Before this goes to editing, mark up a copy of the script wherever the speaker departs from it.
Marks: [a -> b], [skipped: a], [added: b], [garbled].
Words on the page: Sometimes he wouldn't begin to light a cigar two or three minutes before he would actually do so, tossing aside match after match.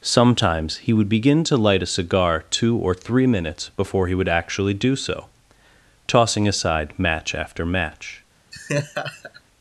Sometimes he [wouldn't -> would] begin to light a cigar two or three minutes before he would actually do so, tossing aside match after match.